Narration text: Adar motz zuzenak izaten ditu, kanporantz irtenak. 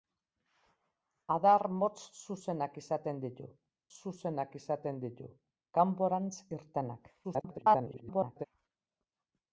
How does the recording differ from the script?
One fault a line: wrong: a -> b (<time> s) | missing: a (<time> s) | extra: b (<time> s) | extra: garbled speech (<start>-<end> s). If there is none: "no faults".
extra: zuzenak izaten ditu (4.0 s)
extra: garbled speech (7.2-8.5 s)